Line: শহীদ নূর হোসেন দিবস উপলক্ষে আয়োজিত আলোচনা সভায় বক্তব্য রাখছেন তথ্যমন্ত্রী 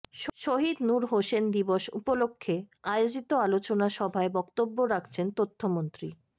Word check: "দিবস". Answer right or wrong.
right